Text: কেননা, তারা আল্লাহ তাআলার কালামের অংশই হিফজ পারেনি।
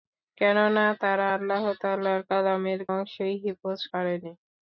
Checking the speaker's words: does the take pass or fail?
pass